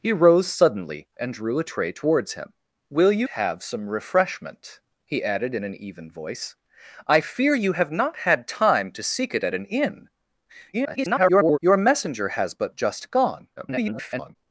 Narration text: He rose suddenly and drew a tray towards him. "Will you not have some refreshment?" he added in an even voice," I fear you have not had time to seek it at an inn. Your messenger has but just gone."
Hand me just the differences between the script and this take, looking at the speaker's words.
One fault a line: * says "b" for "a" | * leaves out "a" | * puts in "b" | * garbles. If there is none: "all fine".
* leaves out "not"
* garbles
* garbles